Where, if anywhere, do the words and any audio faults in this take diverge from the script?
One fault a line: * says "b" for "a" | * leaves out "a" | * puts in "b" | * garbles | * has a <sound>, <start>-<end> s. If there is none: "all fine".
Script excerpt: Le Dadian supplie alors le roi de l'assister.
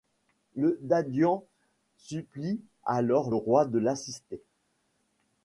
* leaves out "le"